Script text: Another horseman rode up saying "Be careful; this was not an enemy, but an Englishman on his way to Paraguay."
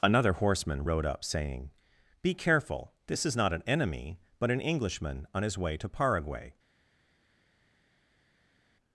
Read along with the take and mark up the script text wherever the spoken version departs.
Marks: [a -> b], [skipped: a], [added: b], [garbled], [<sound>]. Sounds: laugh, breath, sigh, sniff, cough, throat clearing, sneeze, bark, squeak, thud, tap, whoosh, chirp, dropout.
Another horseman rode up saying "Be careful; this [was -> is] not an enemy, but an Englishman on his way to Paraguay."